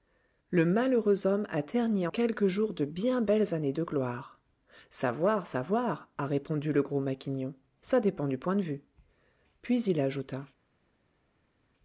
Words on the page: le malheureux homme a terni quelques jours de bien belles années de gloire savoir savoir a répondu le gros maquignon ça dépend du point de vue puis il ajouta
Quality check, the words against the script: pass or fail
pass